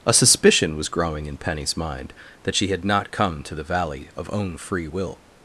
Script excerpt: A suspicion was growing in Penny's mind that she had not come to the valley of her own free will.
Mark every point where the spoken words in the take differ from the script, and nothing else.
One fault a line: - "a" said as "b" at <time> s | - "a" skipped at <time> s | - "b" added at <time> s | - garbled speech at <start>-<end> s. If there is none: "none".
- "her" skipped at 4.3 s